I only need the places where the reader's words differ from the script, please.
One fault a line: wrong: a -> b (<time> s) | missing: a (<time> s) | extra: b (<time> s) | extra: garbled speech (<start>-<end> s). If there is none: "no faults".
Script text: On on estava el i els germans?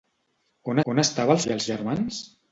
no faults